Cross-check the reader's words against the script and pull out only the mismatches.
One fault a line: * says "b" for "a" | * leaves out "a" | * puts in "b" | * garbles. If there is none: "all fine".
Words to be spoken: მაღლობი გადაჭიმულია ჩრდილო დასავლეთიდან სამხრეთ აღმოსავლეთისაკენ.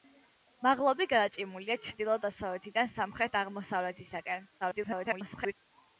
* garbles